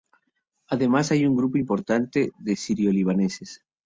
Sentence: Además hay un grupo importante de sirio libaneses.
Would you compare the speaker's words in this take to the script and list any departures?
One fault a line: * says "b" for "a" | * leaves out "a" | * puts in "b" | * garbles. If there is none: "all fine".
all fine